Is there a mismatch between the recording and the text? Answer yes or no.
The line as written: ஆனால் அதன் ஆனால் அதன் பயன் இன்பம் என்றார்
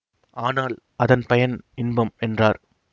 yes